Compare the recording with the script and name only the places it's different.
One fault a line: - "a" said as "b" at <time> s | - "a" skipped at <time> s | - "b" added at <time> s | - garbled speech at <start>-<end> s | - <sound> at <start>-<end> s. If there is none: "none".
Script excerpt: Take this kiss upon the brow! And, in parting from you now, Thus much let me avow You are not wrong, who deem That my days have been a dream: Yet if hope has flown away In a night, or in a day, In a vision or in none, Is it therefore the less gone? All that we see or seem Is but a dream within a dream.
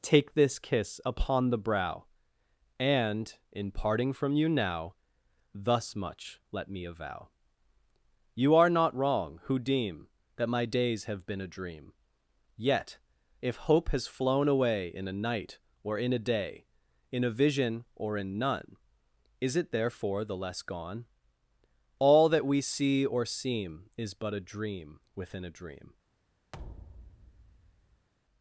- thud at 26.5-28.1 s